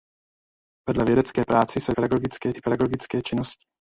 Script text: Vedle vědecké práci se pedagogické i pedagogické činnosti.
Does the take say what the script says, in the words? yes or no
yes